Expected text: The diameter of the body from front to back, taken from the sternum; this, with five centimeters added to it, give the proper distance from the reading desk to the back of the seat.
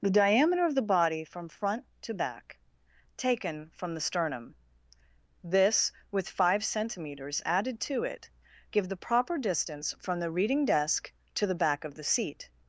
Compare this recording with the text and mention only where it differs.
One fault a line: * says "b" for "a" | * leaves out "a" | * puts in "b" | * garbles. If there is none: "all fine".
all fine